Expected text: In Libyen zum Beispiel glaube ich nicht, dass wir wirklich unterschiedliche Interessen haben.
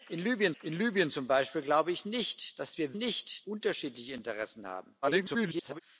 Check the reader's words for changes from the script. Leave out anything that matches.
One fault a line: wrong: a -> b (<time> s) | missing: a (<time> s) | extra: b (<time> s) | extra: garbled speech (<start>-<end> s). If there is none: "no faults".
extra: in Libyen (0.6 s)
wrong: wirklich -> nicht (2.9 s)
extra: garbled speech (5.0-5.8 s)